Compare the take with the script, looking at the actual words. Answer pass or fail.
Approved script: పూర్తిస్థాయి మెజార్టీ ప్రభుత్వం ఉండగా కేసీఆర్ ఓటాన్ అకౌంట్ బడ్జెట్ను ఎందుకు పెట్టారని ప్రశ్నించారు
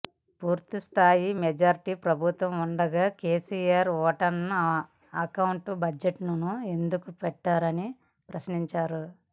pass